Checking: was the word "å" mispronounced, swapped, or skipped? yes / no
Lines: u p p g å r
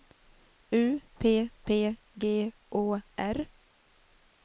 no